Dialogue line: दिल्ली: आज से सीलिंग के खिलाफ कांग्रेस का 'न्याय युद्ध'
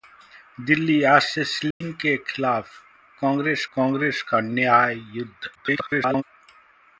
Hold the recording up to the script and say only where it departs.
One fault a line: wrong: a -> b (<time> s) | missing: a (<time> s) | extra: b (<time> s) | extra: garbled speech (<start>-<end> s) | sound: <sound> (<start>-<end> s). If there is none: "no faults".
sound: dropout (1.7-1.8 s)
extra: कांग्रेस (3.8 s)
extra: garbled speech (5.5-6.2 s)